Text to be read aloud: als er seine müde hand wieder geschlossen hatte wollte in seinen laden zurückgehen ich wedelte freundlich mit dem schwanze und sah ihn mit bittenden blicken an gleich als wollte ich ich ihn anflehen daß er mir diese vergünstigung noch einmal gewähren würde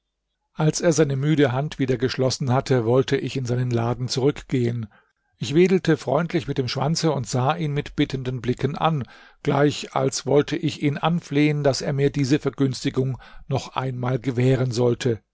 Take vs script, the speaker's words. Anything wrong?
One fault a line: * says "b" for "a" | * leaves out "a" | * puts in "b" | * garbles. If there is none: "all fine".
* puts in "ich"
* leaves out "ich"
* says "sollte" for "würde"